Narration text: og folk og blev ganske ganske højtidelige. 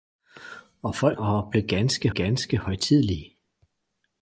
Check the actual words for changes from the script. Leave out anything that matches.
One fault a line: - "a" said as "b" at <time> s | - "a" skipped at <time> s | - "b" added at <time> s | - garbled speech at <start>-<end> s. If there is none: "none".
none